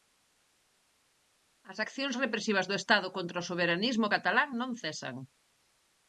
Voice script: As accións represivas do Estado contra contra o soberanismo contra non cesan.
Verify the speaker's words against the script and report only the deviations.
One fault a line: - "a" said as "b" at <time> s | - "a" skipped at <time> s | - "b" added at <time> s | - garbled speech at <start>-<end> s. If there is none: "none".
- "contra" skipped at 3.4 s
- "contra" said as "catalán" at 4.1 s